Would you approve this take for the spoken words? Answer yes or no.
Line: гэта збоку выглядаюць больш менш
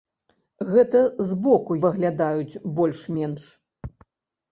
yes